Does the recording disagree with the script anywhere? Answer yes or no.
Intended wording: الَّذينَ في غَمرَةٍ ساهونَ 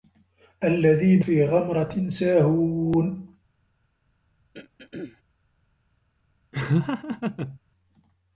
no